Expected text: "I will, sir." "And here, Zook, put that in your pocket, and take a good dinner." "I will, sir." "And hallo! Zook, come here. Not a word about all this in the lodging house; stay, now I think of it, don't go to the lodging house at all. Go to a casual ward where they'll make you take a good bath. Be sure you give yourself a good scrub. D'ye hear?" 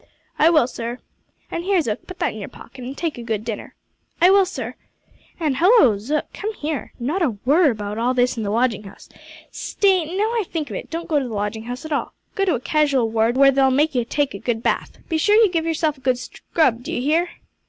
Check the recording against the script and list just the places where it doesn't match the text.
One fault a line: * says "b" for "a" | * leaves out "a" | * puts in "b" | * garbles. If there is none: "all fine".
all fine